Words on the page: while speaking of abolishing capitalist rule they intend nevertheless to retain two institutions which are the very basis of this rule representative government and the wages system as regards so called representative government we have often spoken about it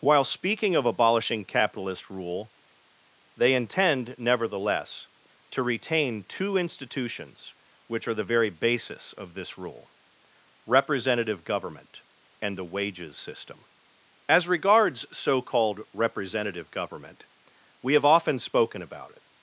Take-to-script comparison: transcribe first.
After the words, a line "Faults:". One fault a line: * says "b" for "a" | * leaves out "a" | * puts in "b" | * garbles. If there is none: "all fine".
while speaking of abolishing capitalist rule they intend nevertheless to retain two institutions which are the very basis of this rule representative government and the wages system as regards so called representative government we have often spoken about it
Faults:
all fine